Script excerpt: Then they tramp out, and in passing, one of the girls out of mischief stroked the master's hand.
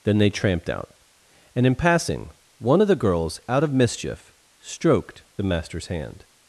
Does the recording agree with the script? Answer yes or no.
no